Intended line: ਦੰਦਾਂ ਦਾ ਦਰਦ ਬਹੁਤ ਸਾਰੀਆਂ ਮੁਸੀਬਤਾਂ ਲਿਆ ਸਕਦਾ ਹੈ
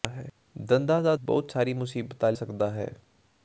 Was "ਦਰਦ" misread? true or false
true